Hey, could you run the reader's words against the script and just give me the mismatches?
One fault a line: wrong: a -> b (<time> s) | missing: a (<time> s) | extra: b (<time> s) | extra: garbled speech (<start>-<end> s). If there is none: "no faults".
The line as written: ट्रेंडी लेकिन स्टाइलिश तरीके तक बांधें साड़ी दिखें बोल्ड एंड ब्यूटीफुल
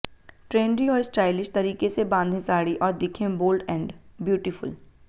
wrong: लेकिन -> और (0.9 s)
wrong: तक -> से (1.9 s)
extra: और (2.8 s)